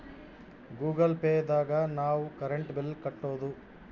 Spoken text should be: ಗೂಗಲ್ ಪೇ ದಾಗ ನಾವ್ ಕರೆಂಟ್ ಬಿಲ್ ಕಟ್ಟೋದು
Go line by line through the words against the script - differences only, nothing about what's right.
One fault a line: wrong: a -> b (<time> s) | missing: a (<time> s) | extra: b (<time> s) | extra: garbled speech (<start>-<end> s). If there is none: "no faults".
no faults